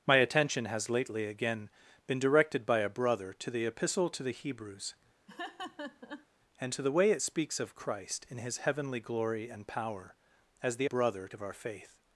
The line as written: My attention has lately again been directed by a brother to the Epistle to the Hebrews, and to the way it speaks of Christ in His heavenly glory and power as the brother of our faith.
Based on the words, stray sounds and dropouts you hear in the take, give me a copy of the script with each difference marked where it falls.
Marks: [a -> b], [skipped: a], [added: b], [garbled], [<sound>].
My attention has lately again been directed by a brother to the Epistle to the Hebrews, [laugh] and to the way it speaks of Christ in His heavenly glory and power as the brother of our faith.